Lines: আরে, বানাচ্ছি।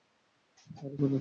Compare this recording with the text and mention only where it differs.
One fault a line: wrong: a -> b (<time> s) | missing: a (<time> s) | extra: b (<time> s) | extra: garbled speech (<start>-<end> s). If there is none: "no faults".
no faults